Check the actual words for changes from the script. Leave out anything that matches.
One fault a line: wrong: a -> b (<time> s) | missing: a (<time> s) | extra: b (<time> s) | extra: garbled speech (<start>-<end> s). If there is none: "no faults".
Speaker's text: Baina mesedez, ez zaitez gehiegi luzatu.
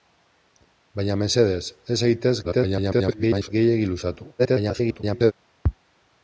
extra: garbled speech (2.4-3.5 s)
extra: garbled speech (4.4-5.3 s)